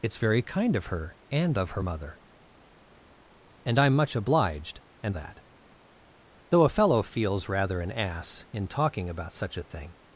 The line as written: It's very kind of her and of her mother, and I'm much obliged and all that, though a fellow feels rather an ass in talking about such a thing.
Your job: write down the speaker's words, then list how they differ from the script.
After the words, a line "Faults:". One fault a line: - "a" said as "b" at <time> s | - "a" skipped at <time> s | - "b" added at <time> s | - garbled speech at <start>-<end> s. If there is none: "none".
It's very kind of her and of her mother, and I'm much obliged and that, though a fellow feels rather an ass in talking about such a thing.
Faults:
- "all" skipped at 5.2 s